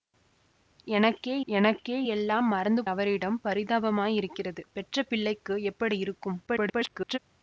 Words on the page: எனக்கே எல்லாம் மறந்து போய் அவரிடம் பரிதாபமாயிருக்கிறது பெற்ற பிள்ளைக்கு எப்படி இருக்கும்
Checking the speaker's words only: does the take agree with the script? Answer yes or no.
no